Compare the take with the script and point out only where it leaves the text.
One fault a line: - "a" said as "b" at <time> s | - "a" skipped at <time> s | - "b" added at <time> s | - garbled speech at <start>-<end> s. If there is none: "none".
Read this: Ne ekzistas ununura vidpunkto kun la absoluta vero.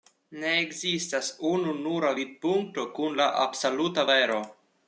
none